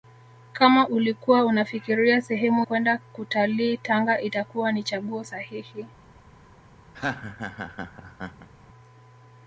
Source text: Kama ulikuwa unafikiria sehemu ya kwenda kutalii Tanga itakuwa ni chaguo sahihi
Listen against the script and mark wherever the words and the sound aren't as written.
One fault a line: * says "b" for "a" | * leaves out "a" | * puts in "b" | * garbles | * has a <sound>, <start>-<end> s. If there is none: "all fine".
* leaves out "ya"
* has a laugh, 6.9-8.5 s